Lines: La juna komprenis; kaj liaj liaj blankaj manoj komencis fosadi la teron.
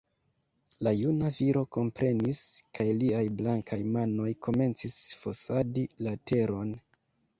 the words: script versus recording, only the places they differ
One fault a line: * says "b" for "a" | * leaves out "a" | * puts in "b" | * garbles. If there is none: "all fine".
* puts in "viro"
* leaves out "liaj"